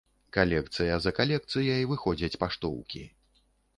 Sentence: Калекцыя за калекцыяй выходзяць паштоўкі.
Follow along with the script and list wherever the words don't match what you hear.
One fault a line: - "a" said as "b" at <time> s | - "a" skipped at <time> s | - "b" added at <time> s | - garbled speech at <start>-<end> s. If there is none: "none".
none